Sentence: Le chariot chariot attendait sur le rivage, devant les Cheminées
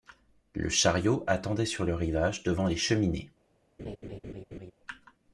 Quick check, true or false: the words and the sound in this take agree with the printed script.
false